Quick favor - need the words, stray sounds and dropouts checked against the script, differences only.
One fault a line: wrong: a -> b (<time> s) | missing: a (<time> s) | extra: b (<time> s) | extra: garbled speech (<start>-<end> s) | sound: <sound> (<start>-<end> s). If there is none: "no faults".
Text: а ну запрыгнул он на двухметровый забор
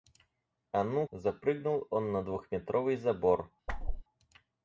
sound: whoosh (3.7-4.0 s)